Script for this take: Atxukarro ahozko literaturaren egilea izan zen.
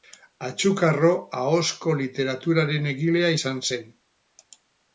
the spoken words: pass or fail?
pass